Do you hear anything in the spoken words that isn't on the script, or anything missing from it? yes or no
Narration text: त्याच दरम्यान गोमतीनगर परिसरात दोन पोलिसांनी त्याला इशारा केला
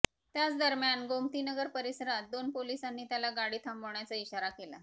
yes